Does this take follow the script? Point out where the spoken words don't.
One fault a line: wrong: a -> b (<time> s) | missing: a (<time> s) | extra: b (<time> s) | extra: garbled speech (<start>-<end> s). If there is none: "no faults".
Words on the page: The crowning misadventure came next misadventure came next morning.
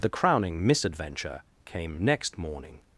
missing: misadventure came next (2.4 s)